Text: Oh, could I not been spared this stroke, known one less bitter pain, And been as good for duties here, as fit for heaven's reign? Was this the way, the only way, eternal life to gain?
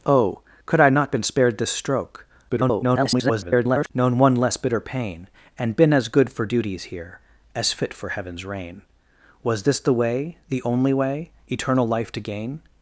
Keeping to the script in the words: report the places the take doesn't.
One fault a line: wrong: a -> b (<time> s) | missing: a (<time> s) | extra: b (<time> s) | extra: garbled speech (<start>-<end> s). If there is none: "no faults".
extra: garbled speech (2.5-3.9 s)